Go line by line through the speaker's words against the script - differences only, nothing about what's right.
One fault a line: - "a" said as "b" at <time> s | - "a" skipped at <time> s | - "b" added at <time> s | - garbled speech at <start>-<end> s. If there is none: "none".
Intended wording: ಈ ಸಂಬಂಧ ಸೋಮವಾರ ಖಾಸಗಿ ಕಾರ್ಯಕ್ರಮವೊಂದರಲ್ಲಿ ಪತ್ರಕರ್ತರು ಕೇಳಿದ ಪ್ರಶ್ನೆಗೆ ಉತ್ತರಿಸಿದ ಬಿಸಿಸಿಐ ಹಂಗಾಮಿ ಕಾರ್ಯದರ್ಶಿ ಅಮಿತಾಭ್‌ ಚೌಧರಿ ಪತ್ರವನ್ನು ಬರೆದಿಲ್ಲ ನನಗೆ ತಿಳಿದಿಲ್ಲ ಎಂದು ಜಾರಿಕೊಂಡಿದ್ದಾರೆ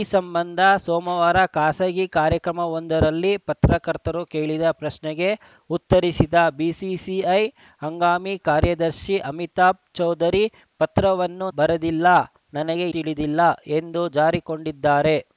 none